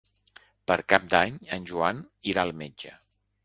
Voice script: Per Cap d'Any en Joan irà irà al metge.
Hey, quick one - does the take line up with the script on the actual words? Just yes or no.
no